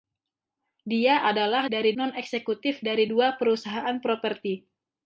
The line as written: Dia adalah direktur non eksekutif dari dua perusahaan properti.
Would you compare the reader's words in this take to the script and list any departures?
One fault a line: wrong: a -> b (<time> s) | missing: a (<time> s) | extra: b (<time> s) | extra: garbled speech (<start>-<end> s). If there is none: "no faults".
wrong: direktur -> dari (1.7 s)